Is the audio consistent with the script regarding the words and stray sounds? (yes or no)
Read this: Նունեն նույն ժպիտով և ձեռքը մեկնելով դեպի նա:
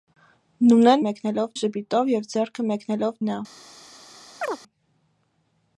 no